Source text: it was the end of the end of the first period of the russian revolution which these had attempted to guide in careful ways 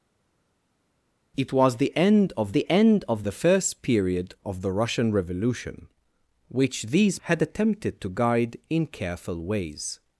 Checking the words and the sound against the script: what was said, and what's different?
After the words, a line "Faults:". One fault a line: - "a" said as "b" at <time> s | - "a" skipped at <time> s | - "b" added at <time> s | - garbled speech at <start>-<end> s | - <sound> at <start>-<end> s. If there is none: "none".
it was the end of the end of the first period of the russian revolution which these had attempted to guide in careful ways
Faults:
none